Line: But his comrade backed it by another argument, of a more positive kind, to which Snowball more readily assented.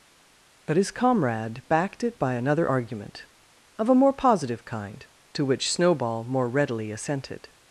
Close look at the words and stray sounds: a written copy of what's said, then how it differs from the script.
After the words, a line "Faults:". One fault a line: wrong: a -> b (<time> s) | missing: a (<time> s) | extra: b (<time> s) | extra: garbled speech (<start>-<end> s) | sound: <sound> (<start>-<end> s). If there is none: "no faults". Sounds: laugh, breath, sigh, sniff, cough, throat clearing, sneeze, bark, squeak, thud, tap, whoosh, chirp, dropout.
But his comrade backed it by another argument, of a more positive kind, to which Snowball more readily assented.
Faults:
no faults